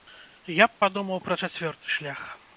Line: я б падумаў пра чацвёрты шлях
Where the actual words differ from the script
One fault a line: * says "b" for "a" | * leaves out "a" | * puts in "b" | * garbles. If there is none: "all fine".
all fine